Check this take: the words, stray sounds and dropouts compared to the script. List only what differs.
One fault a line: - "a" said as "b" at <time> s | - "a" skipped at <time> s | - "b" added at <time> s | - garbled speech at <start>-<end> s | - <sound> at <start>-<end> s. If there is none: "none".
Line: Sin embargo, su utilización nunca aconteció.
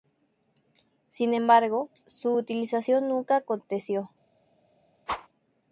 - whoosh at 5.1-5.3 s